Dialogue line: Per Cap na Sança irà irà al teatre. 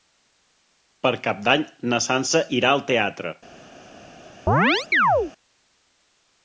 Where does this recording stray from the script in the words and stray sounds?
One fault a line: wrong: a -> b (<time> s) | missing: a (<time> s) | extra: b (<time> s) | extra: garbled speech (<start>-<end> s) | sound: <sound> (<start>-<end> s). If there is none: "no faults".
extra: d'Any (1.5 s)
missing: irà (2.7 s)
sound: chirp (4.5-5.3 s)